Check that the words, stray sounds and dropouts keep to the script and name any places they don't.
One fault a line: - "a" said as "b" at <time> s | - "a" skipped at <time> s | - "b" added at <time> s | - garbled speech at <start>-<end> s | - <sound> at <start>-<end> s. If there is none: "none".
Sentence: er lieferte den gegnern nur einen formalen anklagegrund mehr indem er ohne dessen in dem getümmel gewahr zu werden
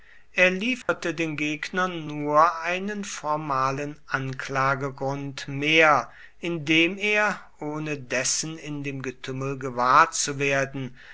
- dropout at 0.8-0.9 s